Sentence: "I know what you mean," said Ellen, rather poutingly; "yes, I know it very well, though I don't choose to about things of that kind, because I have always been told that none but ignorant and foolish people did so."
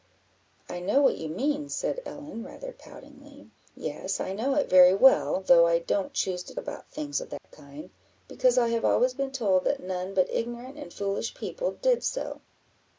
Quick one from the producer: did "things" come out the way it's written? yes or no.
yes